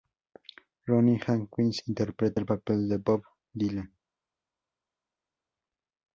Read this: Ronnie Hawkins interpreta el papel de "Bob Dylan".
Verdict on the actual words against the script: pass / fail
pass